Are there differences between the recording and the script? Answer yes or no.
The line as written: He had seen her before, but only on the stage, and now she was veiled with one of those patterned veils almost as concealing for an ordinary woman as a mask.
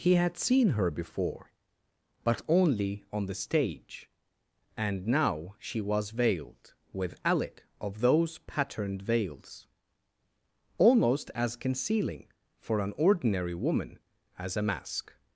yes